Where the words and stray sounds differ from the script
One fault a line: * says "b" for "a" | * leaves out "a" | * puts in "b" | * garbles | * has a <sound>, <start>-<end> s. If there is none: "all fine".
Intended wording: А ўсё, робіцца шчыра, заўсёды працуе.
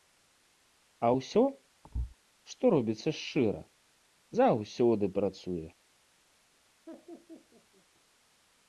* has a thud, 1.8-2.2 s
* puts in "што"
* has a laugh, 6.9-7.9 s